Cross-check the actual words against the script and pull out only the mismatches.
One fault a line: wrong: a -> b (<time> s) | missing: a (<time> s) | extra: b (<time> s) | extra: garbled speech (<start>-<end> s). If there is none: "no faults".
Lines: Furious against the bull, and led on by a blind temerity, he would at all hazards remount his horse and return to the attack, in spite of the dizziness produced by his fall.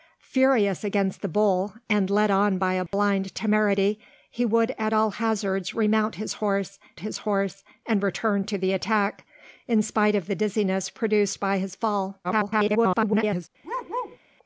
extra: his horse (7.0 s)
extra: garbled speech (12.2-13.5 s)